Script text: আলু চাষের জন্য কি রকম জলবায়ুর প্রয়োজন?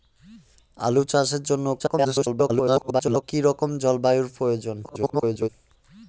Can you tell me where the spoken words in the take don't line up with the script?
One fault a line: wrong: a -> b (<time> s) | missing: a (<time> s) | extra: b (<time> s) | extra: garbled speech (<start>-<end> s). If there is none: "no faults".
extra: garbled speech (1.8-3.2 s)
extra: garbled speech (4.8-5.5 s)